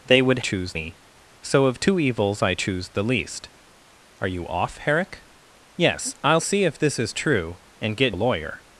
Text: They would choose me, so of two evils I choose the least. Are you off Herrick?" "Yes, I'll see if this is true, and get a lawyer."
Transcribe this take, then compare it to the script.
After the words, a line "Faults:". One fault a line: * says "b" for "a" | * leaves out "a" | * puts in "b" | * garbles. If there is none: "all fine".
They would choose me, so of two evils I choose the least. Are you off Herrick?" "Yes, I'll see if this is true, and get a lawyer."
Faults:
all fine